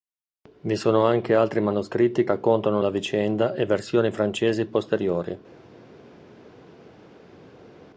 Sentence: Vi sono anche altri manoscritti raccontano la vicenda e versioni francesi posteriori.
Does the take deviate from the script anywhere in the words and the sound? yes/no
no